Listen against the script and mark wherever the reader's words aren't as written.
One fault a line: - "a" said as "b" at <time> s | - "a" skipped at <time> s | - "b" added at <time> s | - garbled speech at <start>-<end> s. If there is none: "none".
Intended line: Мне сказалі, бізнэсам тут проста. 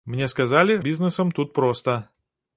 none